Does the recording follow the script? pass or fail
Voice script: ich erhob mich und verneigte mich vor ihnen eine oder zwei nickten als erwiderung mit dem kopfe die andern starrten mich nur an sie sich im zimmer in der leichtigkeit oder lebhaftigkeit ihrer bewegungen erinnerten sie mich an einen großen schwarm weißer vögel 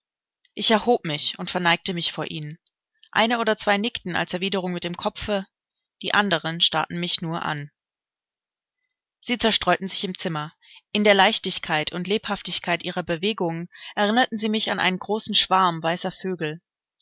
fail